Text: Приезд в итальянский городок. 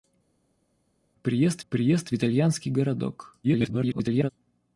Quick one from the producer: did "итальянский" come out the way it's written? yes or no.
yes